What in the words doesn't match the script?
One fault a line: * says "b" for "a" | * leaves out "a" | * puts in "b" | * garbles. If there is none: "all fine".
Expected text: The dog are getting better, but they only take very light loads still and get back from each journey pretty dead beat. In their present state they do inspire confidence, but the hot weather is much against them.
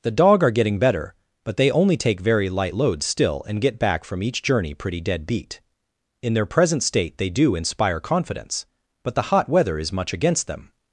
all fine